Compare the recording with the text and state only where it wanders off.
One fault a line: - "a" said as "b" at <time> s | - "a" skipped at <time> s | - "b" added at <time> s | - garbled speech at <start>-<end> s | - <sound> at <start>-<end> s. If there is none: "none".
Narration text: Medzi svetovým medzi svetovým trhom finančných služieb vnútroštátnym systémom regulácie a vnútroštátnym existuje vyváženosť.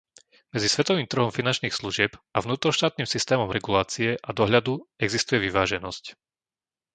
- "medzi svetovým" skipped at 1.0 s
- "a" added at 2.1 s
- "vnútroštátnym" said as "dohľadu" at 4.4 s